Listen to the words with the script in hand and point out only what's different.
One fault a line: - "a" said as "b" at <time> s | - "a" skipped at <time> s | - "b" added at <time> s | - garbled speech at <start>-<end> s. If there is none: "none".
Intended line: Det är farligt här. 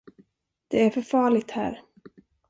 - "för" added at 0.9 s